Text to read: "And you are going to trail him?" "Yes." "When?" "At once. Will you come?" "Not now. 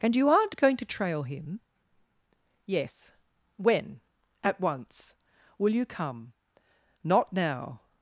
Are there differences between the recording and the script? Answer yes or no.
yes